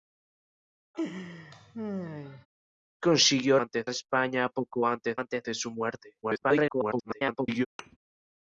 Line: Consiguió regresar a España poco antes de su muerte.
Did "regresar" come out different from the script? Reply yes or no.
yes